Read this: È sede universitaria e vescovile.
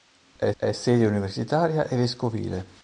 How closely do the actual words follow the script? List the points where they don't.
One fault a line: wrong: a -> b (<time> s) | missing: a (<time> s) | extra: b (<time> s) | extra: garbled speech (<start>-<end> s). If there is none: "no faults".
extra: è (0.6 s)